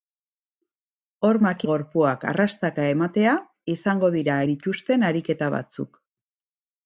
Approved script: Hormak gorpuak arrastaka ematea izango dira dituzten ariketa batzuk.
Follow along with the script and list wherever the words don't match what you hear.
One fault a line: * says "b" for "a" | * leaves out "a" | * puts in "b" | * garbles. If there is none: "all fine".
all fine